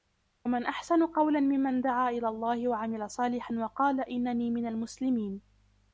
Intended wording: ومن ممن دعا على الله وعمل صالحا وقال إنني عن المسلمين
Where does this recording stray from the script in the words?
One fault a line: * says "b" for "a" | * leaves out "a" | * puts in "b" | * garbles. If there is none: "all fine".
* puts in "أحسن قولا"
* says "إلى" for "على"
* says "من" for "عن"